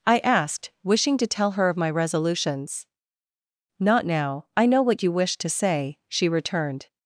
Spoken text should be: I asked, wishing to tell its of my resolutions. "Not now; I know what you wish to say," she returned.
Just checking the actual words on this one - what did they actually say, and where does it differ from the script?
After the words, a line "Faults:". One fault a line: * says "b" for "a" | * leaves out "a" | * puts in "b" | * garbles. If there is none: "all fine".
I asked, wishing to tell her of my resolutions. "Not now; I know what you wish to say," she returned.
Faults:
* says "her" for "its"